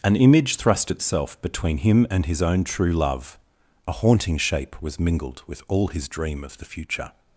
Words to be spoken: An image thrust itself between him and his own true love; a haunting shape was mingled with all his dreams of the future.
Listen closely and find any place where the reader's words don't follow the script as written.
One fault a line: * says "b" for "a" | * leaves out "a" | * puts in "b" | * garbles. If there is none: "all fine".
* says "dream" for "dreams"